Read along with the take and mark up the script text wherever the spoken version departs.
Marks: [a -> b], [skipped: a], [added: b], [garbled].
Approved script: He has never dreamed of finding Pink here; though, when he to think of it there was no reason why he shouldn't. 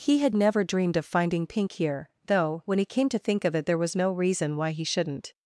He [has -> had] never dreamed of finding Pink here; though, when he [added: came] to think of it there was no reason why he shouldn't.